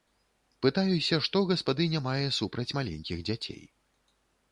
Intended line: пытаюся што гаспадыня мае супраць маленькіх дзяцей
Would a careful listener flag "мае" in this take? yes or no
no